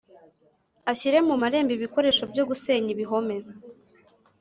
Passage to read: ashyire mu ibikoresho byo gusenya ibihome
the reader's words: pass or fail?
fail